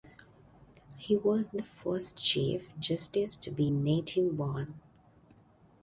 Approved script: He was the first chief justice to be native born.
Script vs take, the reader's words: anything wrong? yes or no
no